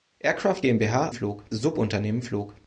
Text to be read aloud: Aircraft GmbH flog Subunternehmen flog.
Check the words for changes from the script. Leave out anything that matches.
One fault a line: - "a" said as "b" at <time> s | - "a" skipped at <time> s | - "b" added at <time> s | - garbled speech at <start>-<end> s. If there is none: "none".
none